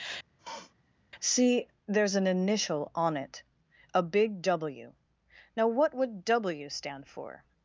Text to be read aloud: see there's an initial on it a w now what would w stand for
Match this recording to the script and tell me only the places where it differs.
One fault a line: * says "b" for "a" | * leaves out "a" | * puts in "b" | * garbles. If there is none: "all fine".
* puts in "big"